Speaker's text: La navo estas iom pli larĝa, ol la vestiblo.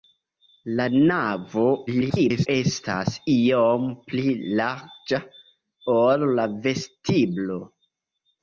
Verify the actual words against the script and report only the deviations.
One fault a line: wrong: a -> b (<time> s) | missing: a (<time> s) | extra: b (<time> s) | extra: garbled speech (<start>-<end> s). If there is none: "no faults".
extra: garbled speech (1.9-2.5 s)